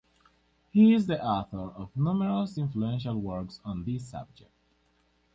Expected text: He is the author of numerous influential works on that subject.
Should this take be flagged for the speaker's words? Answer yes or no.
yes